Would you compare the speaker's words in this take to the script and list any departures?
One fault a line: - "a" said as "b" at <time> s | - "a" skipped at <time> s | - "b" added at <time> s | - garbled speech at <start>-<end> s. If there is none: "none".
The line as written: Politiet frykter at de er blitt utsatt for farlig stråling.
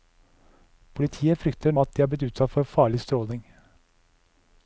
none